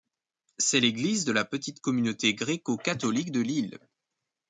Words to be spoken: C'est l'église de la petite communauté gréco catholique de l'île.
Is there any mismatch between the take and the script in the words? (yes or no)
no